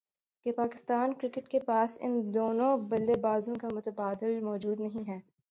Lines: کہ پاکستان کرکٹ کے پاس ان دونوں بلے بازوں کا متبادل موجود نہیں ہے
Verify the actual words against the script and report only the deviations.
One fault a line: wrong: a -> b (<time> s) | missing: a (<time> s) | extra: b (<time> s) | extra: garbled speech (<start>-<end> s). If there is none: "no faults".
no faults